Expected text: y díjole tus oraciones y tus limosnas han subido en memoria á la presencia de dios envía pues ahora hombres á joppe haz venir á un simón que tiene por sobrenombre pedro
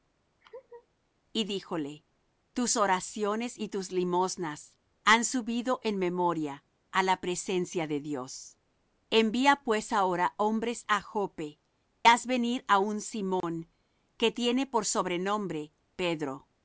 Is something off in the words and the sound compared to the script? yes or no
yes